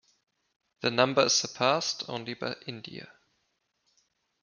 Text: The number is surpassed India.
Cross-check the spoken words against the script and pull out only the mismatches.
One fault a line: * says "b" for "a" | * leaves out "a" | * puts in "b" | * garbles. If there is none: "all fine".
* puts in "only by"